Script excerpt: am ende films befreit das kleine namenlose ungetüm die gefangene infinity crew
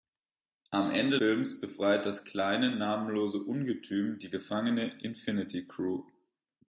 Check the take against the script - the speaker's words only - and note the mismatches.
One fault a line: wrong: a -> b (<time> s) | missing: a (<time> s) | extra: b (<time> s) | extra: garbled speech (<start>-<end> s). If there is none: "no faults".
no faults